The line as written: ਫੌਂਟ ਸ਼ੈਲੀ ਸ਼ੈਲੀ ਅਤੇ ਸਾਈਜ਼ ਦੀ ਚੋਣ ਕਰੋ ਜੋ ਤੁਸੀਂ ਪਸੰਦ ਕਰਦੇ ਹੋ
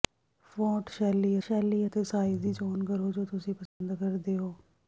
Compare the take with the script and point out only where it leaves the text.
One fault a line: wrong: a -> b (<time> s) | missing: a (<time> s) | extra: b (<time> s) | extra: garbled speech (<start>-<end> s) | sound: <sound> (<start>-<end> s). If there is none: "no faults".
sound: dropout (3.7-3.8 s)